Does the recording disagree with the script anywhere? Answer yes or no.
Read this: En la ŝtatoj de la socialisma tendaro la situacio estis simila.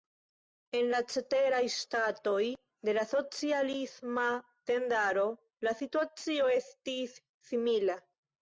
yes